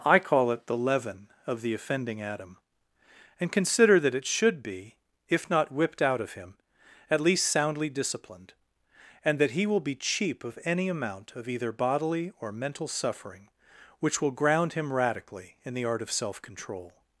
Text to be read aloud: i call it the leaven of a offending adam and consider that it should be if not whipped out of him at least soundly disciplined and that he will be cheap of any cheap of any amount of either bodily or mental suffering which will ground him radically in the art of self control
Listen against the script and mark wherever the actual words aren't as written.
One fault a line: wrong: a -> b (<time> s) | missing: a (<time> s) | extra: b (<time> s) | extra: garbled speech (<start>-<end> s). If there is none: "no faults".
wrong: a -> the (1.6 s)
missing: cheap of any (10.9 s)